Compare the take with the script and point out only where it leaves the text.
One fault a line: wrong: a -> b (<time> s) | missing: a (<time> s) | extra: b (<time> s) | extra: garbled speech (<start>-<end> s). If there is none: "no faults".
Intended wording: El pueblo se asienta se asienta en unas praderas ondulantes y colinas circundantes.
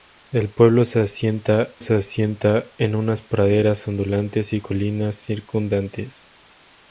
no faults